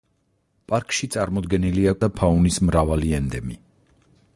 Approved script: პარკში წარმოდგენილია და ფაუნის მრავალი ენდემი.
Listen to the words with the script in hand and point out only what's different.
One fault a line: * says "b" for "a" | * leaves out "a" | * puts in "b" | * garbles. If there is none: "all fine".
all fine